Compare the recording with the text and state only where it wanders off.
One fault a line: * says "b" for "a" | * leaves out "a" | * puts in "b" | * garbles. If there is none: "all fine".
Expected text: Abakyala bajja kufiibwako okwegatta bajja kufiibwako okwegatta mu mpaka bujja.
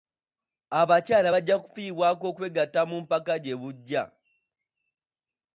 * leaves out "bajja kufiibwako okwegatta"
* puts in "gye"